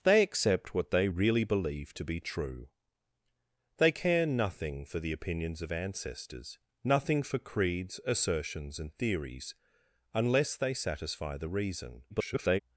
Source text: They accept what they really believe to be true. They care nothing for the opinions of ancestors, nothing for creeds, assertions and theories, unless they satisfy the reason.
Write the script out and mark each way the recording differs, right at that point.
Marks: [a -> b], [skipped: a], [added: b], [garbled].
They accept what they really believe to be true. They care nothing for the opinions of ancestors, nothing for creeds, assertions and theories, unless they satisfy the reason. [garbled]